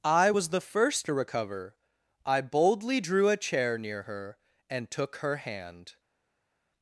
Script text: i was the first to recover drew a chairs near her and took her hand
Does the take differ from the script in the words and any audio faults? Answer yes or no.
yes